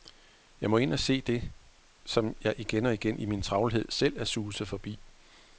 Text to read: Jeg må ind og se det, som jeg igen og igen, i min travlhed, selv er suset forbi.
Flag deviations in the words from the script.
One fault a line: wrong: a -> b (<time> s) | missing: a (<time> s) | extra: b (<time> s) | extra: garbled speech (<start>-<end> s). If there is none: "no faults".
no faults